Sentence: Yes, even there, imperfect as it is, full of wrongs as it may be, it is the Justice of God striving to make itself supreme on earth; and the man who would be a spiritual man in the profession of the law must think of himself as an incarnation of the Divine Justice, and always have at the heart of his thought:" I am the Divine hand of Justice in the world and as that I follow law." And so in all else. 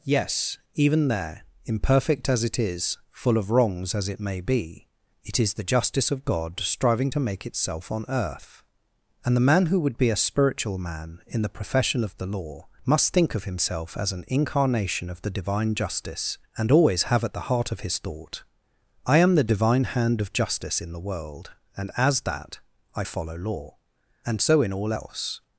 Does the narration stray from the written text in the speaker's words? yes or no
yes